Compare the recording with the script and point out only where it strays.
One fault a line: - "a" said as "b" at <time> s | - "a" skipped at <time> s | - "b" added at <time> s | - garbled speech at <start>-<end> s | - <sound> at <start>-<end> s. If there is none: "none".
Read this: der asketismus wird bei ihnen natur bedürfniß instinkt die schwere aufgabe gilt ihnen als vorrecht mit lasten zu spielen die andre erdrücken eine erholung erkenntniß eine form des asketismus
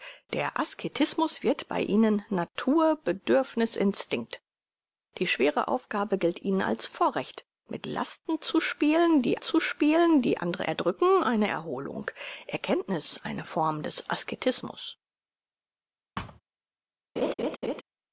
- "zu spielen die" added at 9.4 s
- thud at 16.2-16.4 s
- laugh at 17.2-17.8 s